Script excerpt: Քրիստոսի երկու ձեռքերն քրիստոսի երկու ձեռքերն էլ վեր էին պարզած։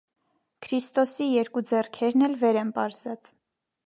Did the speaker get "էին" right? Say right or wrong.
wrong